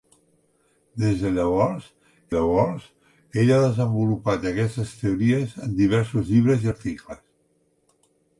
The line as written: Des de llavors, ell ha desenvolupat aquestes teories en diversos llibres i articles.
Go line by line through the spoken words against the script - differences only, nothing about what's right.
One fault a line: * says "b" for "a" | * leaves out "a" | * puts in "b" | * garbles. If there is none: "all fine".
* puts in "llavors"